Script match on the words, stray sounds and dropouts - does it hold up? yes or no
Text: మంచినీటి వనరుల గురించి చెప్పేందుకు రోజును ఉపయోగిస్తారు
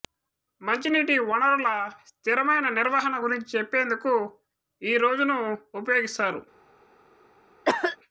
no